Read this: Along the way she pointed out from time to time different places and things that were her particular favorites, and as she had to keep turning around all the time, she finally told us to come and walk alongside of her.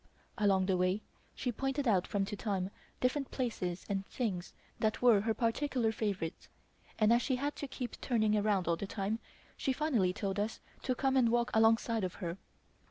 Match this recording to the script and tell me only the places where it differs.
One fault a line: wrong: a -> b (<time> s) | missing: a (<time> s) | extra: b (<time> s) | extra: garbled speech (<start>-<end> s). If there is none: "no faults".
missing: time (2.2 s)